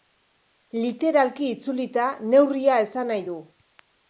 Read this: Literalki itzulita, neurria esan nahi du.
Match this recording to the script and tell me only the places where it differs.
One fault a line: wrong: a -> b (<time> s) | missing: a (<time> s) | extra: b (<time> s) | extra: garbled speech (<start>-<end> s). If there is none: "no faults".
no faults